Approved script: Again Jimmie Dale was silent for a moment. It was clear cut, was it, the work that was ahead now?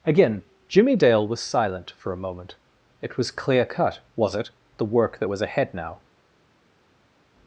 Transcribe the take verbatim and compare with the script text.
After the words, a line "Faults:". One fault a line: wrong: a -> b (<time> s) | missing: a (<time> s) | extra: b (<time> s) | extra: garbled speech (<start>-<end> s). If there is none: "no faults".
Again Jimmie Dale was silent for a moment. It was clear cut, was it, the work that was ahead now?
Faults:
no faults